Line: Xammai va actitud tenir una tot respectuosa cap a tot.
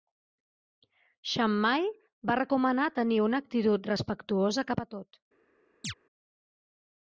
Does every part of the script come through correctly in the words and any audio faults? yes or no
no